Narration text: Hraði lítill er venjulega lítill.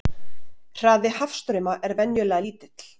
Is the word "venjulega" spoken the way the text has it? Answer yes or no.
yes